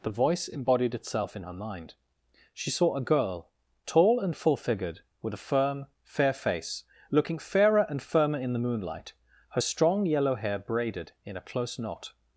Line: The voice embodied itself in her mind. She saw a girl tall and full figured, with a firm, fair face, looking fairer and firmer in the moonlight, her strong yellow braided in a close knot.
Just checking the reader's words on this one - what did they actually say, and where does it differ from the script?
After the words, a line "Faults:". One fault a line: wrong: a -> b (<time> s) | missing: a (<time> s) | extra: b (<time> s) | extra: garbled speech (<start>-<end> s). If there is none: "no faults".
The voice embodied itself in her mind. She saw a girl tall and full figured, with a firm, fair face, looking fairer and firmer in the moonlight, her strong yellow hair braided in a close knot.
Faults:
extra: hair (10.4 s)